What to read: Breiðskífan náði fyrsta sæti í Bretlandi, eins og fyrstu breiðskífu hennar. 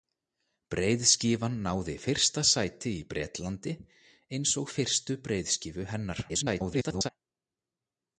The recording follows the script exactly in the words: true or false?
false